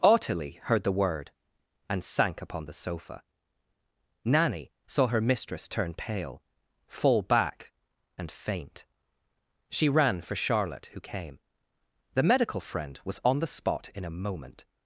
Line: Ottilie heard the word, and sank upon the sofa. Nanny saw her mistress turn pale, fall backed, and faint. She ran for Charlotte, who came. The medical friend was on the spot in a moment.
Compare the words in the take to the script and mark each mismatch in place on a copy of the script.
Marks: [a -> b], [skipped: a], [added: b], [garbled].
Ottilie heard the word, and sank upon the sofa. Nanny saw her mistress turn pale, fall [backed, -> back] and faint. She ran for Charlotte, who came. The medical friend was on the spot in a moment.